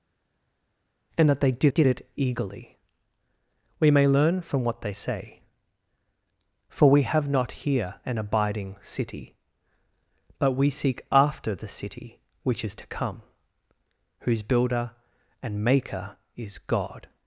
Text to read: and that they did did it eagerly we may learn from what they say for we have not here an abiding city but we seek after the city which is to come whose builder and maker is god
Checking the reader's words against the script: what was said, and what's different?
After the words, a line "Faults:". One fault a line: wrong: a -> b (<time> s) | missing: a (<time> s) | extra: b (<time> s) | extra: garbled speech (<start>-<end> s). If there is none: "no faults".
and that they did did it eagerly we may learn from what they say for we have not here an abiding city but we seek after the city which is to come whose builder and maker is god
Faults:
no faults